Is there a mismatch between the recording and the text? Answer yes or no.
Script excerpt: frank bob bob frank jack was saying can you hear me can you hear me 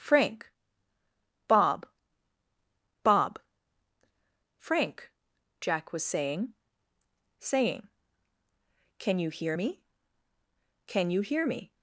yes